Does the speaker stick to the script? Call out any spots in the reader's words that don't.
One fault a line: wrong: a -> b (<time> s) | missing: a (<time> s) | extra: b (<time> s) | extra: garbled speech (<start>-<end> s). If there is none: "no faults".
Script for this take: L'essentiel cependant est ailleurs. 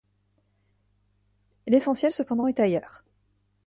no faults